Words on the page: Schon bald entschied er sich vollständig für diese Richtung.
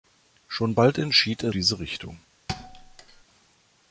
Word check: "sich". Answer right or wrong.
wrong